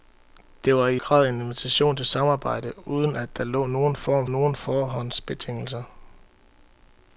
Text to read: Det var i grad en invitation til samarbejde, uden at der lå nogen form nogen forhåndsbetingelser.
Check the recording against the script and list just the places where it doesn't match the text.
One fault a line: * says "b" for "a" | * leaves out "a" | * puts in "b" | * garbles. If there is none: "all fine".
all fine